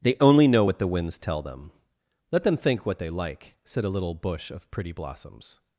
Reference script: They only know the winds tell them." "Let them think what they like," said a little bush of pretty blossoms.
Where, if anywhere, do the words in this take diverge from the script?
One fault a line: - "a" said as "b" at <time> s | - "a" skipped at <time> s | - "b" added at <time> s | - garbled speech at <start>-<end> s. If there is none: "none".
- "what" added at 0.6 s